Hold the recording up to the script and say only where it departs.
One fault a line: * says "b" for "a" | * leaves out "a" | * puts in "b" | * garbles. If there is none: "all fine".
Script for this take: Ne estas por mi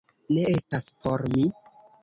all fine